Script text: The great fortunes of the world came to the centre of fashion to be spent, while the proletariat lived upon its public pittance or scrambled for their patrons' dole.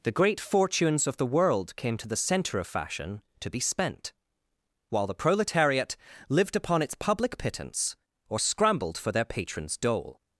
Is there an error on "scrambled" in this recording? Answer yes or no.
no